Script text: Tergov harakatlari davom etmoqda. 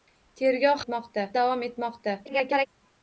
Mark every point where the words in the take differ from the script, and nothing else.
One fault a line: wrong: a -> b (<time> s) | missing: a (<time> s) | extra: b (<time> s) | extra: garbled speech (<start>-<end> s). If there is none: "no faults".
wrong: harakatlari -> etmoqda (0.8 s)
extra: garbled speech (2.3-2.7 s)